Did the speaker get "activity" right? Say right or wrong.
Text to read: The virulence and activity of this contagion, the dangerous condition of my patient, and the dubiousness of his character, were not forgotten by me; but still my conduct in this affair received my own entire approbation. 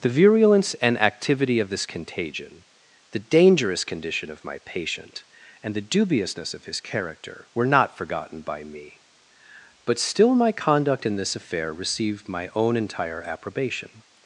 right